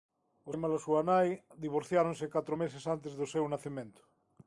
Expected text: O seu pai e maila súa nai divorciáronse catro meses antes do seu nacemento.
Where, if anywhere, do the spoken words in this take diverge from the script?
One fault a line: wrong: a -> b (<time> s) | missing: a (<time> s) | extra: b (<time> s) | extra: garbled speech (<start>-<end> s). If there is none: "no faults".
missing: seu pai (0.5 s)